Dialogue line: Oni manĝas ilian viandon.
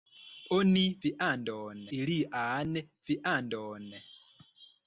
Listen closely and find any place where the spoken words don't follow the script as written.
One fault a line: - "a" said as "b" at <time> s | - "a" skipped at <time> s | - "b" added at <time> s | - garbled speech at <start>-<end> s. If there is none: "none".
- "manĝas" said as "viandon" at 1.1 s